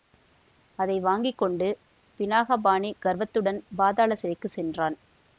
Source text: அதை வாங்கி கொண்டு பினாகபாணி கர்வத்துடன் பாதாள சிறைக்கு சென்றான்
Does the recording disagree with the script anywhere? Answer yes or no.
no